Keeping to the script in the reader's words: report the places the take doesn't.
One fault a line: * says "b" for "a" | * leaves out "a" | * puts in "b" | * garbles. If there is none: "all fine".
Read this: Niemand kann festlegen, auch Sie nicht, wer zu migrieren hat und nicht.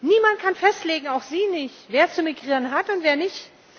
* puts in "wer"